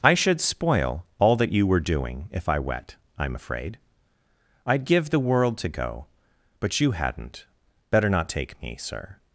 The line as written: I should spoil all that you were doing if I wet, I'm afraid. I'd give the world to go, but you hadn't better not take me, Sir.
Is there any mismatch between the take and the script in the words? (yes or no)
no